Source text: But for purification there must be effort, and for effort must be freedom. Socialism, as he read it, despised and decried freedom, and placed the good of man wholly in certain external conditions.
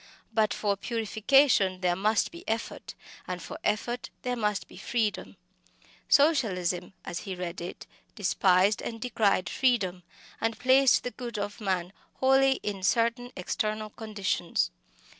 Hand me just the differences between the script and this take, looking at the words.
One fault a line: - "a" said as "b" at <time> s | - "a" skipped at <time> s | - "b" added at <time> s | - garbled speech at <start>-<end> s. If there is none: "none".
- "there" added at 4.2 s